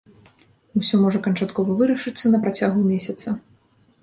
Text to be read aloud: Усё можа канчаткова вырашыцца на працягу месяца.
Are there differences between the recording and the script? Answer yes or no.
no